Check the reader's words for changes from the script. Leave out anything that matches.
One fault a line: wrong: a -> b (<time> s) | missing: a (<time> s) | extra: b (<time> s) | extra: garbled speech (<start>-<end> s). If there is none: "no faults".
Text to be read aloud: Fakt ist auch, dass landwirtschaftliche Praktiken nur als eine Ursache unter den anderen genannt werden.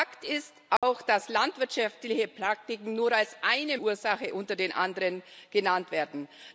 no faults